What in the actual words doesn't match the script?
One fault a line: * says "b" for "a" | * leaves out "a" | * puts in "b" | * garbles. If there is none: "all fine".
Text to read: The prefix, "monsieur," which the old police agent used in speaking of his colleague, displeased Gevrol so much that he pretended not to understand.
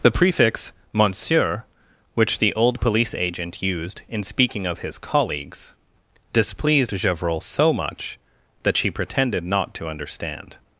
* says "colleagues" for "colleague"
* says "she" for "he"